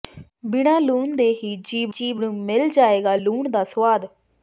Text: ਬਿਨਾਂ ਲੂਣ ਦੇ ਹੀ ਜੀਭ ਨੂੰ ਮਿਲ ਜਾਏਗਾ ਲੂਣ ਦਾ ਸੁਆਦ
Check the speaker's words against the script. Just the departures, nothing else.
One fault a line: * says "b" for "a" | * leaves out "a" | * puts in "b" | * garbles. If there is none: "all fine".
* puts in "ਜੀਭ"